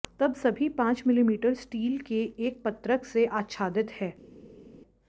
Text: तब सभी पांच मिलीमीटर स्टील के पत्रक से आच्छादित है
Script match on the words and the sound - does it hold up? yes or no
no